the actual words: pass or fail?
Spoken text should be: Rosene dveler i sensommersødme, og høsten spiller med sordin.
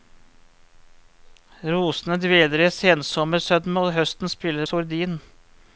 fail